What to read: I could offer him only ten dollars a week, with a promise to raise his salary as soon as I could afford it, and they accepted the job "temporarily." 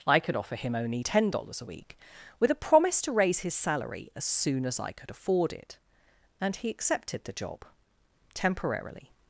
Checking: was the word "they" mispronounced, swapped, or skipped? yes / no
yes